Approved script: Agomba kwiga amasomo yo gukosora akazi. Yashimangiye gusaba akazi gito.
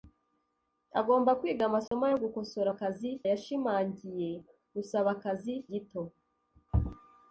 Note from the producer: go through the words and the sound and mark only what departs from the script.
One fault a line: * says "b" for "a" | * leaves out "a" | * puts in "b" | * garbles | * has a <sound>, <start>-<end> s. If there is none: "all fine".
* has a dropout, 1.9-1.9 s